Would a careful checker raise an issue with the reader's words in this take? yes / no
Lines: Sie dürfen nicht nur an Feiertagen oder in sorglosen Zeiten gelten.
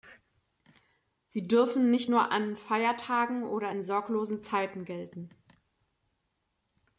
no